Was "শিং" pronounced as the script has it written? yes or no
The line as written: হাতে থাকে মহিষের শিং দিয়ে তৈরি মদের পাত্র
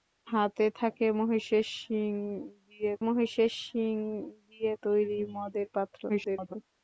yes